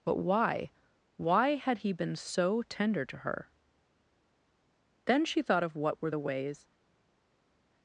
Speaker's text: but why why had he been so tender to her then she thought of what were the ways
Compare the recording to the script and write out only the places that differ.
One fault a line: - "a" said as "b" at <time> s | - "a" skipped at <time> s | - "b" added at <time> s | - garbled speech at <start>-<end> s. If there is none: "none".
none